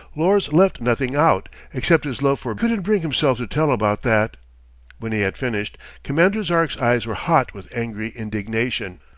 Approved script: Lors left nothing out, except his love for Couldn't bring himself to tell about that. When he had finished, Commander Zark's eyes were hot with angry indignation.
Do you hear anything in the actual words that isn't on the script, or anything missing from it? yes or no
no